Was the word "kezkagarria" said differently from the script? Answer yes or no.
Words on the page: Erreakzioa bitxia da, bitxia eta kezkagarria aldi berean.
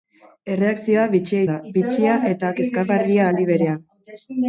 no